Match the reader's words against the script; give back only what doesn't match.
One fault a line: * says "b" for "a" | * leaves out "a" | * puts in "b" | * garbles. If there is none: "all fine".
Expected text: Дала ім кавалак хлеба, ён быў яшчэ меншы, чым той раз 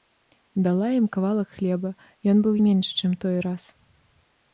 * leaves out "яшчэ"